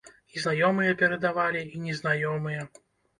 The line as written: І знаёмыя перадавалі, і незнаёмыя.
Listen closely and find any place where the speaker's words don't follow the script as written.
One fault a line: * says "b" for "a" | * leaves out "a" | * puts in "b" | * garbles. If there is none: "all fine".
all fine